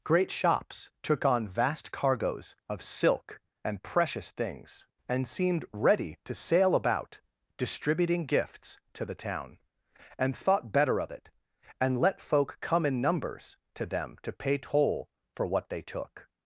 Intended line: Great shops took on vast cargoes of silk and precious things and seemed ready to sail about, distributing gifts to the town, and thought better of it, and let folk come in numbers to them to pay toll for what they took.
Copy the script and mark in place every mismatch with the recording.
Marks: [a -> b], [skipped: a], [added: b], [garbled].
Great shops took on vast cargoes of silk and precious things and seemed ready to sail about, distributing gifts to the town, and thought better of it, and let folk come in numbers to them to pay toll for what they took.